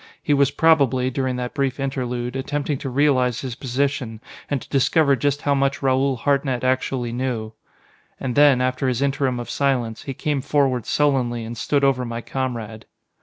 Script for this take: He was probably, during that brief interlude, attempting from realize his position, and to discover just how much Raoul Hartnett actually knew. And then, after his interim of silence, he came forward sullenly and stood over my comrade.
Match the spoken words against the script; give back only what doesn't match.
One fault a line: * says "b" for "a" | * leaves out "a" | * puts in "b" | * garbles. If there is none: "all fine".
* says "to" for "from"